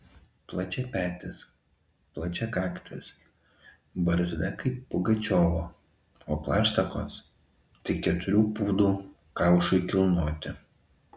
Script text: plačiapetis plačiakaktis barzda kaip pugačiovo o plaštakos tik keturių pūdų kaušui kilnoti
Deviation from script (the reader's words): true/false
false